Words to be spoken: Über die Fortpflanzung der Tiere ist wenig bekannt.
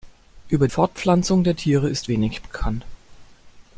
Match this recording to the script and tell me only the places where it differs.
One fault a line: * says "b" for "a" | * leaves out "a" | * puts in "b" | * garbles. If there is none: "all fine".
* leaves out "die"